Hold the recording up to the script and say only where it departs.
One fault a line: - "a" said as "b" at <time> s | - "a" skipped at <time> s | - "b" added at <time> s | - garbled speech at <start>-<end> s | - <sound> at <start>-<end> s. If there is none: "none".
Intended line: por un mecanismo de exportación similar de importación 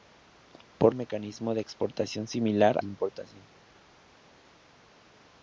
none